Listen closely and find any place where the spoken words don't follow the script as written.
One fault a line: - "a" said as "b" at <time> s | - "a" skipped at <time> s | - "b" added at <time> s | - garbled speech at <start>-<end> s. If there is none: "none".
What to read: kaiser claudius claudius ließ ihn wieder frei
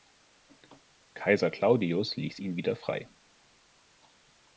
- "claudius" skipped at 2.1 s